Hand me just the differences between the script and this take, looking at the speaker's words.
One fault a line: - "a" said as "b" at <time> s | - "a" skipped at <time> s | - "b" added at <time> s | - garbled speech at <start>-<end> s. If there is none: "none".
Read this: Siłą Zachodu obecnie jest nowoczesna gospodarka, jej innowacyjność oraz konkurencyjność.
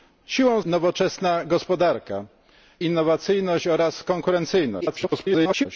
- "Zachodu obecnie jest" skipped at 0.6 s
- "jej" skipped at 2.3 s
- garbled speech at 4.8-5.7 s